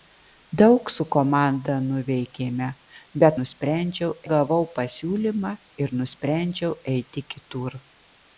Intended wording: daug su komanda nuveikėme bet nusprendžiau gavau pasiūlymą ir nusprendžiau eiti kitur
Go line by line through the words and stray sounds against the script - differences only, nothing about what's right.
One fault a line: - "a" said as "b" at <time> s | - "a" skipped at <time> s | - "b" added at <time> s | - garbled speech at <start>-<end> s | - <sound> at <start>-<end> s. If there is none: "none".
none